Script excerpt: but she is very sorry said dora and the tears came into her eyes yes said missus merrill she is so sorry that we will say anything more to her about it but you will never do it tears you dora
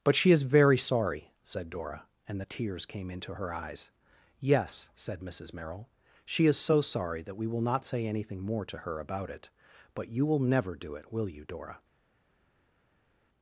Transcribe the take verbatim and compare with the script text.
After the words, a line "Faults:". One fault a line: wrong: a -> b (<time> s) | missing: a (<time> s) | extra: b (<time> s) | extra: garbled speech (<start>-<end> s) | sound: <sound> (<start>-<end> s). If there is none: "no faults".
but she is very sorry said dora and the tears came into her eyes yes said missus merrill she is so sorry that we will not say anything more to her about it but you will never do it will you dora
Faults:
extra: not (7.6 s)
wrong: tears -> will (11.1 s)